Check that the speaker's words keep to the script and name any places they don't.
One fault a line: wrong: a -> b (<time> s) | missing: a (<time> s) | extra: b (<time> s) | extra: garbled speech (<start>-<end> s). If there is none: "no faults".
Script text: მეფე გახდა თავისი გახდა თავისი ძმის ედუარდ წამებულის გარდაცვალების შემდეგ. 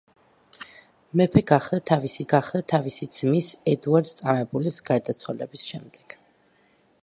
no faults